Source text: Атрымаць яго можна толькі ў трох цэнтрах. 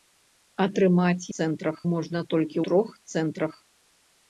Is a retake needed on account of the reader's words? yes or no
yes